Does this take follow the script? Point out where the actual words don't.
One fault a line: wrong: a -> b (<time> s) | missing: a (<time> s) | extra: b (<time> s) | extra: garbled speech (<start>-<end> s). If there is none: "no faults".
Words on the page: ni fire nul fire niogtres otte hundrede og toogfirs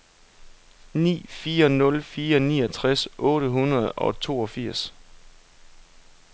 no faults